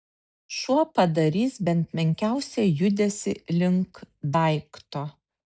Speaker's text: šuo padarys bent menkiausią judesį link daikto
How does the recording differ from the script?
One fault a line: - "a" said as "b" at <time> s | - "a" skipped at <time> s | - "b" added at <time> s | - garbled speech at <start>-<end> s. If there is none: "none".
none